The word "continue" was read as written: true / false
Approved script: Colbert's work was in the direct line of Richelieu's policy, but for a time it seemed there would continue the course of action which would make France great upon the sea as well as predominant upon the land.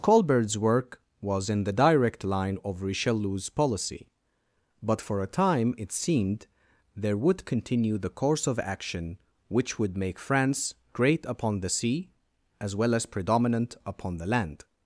true